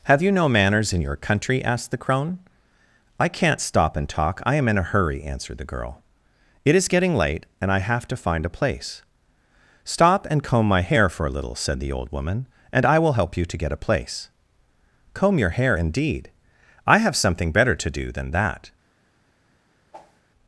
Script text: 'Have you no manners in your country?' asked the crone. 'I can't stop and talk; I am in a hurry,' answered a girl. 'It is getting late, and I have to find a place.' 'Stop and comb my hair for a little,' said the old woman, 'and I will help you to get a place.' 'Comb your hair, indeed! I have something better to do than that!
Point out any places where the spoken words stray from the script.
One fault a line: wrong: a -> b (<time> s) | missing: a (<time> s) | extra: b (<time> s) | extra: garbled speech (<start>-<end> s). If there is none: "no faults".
wrong: a -> the (5.6 s)